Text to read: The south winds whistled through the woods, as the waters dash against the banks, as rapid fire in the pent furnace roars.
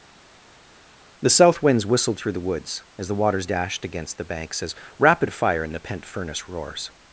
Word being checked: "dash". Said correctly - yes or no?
no